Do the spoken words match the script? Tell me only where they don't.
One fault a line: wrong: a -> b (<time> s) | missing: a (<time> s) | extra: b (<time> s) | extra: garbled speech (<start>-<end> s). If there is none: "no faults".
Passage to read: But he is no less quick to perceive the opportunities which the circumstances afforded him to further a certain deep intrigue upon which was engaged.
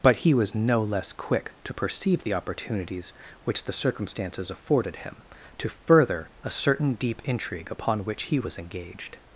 wrong: is -> was (0.3 s)
extra: he (8.2 s)